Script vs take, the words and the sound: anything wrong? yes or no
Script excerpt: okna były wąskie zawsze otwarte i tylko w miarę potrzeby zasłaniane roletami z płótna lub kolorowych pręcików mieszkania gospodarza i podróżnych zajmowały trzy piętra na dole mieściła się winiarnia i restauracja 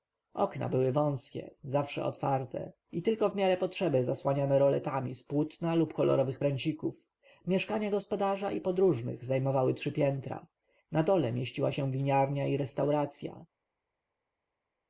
no